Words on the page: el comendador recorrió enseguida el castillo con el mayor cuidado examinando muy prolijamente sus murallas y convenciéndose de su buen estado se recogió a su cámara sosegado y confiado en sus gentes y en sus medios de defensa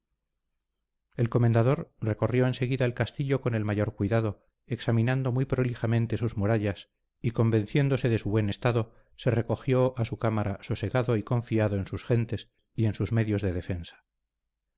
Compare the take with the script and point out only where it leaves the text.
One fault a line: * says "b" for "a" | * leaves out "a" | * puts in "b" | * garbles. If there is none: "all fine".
all fine